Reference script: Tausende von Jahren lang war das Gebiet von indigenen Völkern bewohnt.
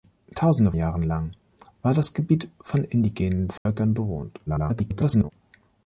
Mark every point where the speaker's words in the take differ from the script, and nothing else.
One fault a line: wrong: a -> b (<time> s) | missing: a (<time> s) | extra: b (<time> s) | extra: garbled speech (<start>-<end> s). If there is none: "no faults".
missing: von (0.7 s)
extra: garbled speech (4.5-5.3 s)